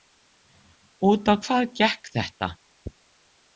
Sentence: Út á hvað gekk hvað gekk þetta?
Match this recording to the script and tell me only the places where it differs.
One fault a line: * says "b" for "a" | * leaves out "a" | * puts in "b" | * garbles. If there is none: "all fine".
* leaves out "hvað gekk"